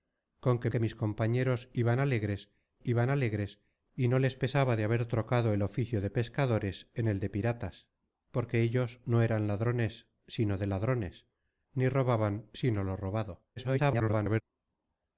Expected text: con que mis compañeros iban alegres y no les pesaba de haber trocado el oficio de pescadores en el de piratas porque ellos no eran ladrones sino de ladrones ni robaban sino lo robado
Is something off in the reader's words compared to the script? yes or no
yes